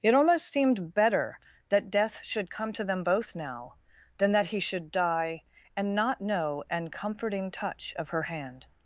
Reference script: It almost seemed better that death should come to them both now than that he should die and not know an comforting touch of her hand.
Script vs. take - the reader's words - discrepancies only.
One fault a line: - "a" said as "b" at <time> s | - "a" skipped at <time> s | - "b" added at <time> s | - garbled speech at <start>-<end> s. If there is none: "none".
none